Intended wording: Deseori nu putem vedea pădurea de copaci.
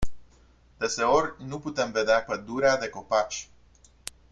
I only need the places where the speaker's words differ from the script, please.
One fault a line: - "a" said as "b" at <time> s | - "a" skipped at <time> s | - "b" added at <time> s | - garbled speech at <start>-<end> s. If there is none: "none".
none